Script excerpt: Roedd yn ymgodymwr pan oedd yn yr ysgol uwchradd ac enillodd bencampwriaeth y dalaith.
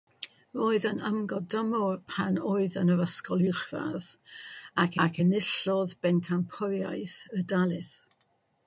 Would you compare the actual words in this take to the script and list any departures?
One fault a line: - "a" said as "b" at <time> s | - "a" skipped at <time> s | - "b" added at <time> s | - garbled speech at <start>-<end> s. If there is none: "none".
- "ac" added at 5.1 s